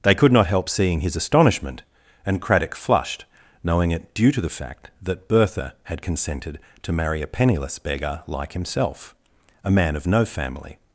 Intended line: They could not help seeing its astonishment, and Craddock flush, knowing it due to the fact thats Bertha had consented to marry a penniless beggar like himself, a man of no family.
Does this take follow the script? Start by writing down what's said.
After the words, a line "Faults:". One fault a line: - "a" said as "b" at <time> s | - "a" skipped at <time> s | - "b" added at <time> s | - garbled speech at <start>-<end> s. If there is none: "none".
They could not help seeing his astonishment, and Craddock flushed, knowing it due to the fact that Bertha had consented to marry a penniless beggar like himself, a man of no family.
Faults:
- "its" said as "his" at 1.0 s
- "flush" said as "flushed" at 2.8 s
- "thats" said as "that" at 5.0 s